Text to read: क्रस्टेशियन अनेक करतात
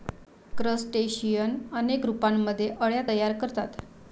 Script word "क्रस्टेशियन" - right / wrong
right